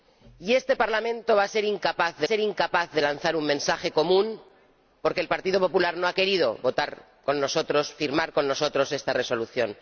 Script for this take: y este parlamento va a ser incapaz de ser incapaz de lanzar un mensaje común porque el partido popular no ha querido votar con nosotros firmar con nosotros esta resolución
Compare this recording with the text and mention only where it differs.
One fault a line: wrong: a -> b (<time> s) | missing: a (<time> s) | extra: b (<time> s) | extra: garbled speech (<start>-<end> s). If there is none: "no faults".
no faults